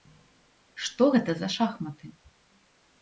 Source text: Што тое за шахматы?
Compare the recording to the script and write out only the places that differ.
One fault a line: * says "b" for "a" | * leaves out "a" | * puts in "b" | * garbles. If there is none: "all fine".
* says "гэта" for "тое"